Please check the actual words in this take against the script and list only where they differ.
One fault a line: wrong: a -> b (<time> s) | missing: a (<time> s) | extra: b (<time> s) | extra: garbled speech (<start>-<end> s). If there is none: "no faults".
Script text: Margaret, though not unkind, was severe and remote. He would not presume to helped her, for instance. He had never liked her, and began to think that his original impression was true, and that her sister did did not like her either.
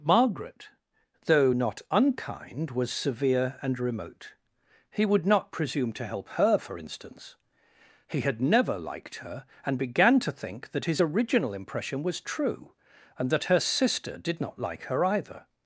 wrong: helped -> help (6.1 s)
missing: did (14.4 s)